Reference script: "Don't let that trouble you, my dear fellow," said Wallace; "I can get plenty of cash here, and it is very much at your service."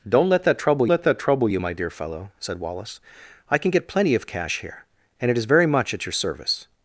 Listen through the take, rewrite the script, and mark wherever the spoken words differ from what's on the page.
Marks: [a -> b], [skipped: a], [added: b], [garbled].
"Don't let that trouble [added: let that trouble] you, my dear fellow," said Wallace; "I can get plenty of cash here, and it is very much at your service."